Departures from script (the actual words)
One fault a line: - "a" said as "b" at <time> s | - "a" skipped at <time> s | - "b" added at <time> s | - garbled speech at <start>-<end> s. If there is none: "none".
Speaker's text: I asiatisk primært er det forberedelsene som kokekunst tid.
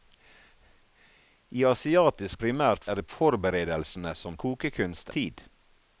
none